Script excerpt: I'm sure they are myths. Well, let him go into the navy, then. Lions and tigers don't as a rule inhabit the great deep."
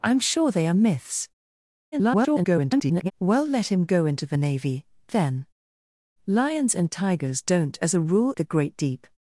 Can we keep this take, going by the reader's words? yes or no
no